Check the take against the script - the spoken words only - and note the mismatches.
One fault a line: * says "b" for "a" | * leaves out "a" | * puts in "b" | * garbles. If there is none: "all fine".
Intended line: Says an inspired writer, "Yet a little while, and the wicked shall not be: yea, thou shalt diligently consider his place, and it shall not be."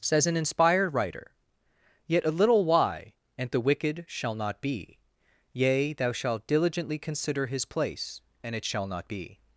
* says "why" for "while"